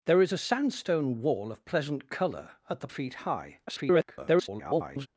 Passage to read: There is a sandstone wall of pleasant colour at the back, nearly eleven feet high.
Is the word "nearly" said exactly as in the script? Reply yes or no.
no